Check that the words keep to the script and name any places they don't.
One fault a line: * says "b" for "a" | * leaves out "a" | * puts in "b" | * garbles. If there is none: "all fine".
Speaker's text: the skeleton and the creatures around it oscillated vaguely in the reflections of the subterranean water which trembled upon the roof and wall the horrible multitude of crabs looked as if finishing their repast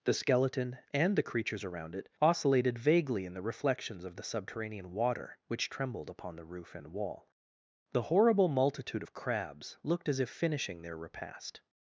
all fine